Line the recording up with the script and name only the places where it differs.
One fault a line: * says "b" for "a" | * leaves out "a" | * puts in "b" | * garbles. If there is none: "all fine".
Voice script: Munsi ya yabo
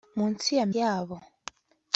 all fine